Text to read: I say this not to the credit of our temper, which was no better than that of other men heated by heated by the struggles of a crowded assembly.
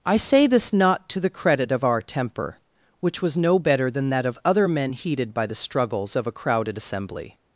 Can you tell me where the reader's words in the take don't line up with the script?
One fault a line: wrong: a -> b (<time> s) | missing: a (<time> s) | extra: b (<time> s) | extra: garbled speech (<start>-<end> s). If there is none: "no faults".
missing: heated by (5.5 s)